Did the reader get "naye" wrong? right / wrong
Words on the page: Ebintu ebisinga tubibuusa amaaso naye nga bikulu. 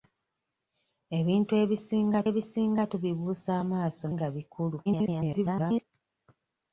wrong